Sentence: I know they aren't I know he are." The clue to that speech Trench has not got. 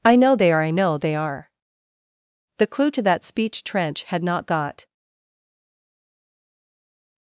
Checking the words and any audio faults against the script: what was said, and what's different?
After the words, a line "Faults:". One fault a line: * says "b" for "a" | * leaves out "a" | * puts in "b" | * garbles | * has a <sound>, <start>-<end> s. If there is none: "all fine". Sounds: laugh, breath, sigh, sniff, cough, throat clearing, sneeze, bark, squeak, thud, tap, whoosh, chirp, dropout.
I know they are I know they are." The clue to that speech Trench had not got.
Faults:
* says "are" for "aren't"
* says "they" for "he"
* says "had" for "has"